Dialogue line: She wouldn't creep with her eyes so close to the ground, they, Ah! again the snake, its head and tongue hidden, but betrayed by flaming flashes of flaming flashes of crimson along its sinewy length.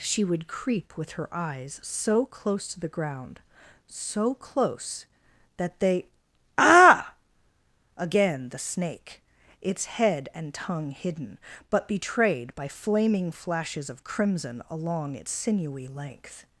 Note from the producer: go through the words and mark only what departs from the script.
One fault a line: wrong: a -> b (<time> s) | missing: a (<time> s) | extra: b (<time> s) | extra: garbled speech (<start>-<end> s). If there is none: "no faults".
wrong: wouldn't -> would (0.2 s)
extra: so close that (3.9 s)
missing: flaming flashes of (14.0 s)